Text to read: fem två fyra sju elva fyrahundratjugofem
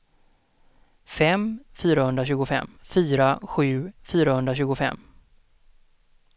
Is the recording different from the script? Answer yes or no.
yes